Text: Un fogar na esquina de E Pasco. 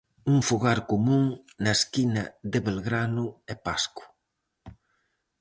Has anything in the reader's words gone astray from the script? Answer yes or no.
yes